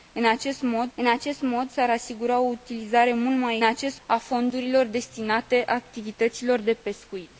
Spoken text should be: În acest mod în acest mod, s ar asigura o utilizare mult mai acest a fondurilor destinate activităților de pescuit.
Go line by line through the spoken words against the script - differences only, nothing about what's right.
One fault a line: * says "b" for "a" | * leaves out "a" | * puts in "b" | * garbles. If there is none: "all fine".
all fine